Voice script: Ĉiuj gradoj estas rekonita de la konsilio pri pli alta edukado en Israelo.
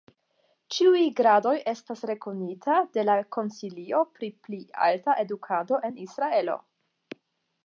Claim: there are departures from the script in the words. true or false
false